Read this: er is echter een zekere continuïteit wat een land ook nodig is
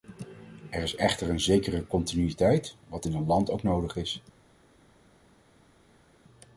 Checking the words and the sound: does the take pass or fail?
fail